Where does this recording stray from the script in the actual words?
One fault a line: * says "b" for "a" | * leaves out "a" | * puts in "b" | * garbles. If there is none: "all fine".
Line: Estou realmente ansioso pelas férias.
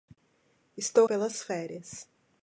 * leaves out "realmente ansioso"